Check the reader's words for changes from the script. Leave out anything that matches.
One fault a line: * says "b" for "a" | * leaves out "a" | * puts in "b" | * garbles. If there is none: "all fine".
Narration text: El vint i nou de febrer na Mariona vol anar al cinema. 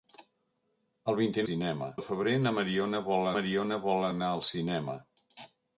* says "cinema" for "nou"
* puts in "Mariona vol"